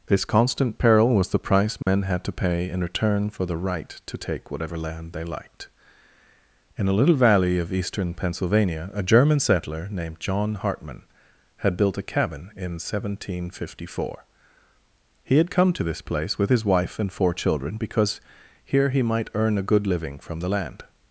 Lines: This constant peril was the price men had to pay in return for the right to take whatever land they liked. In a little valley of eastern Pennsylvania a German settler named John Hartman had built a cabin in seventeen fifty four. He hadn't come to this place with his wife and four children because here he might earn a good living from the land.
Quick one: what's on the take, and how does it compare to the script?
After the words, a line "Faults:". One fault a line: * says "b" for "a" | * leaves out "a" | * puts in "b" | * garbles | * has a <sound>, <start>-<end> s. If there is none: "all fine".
This constant peril was the price men had to pay in return for the right to take whatever land they liked. In a little valley of eastern Pennsylvania a German settler named John Hartman had built a cabin in seventeen fifty four. He had come to this place with his wife and four children because here he might earn a good living from the land.
Faults:
* has a dropout, 1.8-1.9 s
* says "had" for "hadn't"